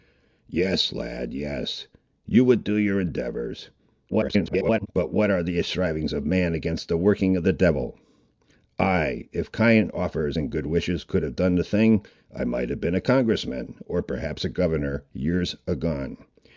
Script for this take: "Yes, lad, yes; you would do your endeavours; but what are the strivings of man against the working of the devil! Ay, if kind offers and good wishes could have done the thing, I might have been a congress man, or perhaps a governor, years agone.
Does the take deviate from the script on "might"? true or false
false